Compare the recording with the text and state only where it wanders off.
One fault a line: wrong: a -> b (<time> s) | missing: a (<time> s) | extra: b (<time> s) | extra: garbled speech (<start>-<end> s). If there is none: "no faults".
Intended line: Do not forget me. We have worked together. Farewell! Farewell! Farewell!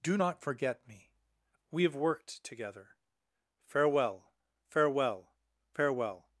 no faults